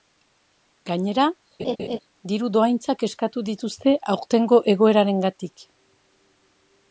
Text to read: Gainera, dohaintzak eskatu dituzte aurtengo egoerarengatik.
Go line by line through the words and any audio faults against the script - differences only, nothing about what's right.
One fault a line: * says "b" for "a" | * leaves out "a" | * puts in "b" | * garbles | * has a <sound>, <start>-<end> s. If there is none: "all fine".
* has a laugh, 1.6-2.0 s
* puts in "diru"